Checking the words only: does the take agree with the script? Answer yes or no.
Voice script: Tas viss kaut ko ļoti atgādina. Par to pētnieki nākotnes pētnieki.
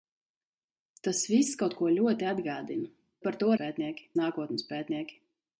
yes